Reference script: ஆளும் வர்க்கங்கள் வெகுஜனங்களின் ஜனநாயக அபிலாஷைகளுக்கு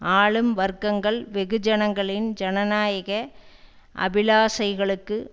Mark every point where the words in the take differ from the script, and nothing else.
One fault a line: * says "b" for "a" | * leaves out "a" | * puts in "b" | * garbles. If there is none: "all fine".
all fine